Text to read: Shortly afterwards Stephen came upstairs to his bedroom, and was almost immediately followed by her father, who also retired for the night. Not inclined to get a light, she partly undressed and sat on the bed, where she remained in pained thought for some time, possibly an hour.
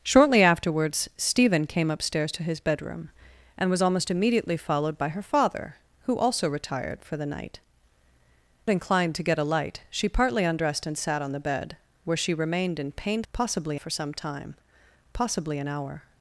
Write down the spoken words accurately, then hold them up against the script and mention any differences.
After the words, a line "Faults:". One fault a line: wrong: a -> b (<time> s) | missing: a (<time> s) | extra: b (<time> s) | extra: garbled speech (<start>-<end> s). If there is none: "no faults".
Shortly afterwards Stephen came upstairs to his bedroom, and was almost immediately followed by her father, who also retired for the night. Inclined to get a light, she partly undressed and sat on the bed, where she remained in pained possibly for some time, possibly an hour.
Faults:
missing: Not (7.6 s)
wrong: thought -> possibly (13.3 s)